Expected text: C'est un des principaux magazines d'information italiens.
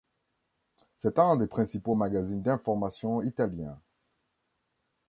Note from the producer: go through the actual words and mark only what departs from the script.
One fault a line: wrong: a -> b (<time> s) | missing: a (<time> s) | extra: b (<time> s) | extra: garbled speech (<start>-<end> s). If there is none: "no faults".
no faults